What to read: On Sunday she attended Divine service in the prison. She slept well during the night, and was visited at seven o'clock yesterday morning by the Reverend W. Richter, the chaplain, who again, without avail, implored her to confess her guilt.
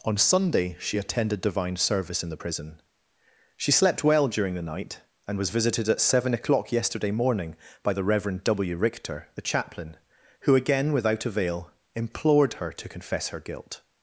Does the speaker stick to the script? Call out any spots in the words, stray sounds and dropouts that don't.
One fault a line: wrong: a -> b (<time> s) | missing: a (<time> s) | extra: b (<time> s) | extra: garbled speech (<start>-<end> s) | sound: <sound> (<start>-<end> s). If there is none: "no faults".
no faults